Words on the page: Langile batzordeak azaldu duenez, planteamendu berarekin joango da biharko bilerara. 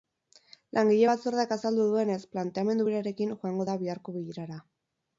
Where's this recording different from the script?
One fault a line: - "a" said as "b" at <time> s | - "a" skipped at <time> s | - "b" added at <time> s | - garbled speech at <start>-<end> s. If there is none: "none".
none